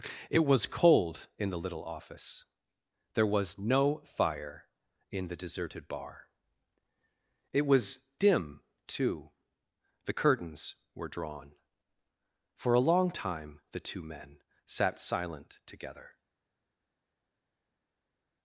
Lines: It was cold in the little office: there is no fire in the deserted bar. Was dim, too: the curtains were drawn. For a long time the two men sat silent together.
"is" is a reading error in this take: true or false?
true